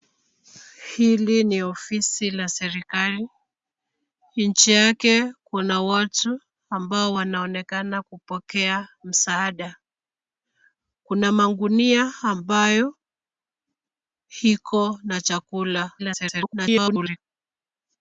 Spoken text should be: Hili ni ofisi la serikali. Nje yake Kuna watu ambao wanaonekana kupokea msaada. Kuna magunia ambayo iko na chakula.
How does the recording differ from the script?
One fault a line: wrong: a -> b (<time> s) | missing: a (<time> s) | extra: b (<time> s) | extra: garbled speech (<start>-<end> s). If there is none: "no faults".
extra: garbled speech (16.0-17.2 s)